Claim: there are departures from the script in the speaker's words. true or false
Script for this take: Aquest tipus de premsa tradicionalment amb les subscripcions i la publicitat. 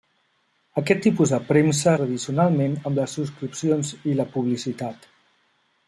false